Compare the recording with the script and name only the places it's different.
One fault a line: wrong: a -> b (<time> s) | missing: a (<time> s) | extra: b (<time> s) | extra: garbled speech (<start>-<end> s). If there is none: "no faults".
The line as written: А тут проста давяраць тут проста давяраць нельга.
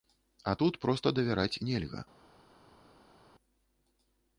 missing: тут проста давяраць (1.6 s)